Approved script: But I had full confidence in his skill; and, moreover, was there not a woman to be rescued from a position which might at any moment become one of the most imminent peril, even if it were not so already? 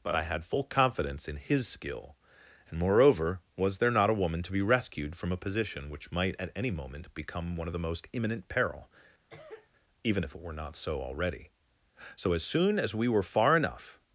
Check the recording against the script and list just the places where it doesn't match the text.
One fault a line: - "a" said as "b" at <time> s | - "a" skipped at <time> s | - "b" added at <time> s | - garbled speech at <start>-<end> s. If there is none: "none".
- "So as soon as we were far enough" added at 12.2 s